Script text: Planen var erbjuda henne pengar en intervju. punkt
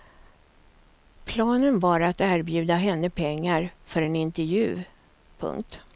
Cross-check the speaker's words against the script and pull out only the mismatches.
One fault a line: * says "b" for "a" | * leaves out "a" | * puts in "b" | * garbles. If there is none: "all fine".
* puts in "att"
* puts in "för"